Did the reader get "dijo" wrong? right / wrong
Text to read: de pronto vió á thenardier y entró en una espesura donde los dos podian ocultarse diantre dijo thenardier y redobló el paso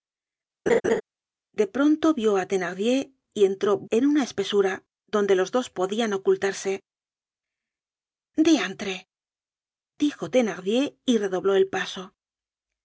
right